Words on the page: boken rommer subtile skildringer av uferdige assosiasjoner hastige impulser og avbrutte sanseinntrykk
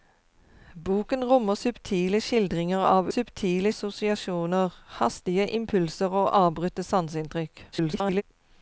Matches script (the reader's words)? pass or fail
fail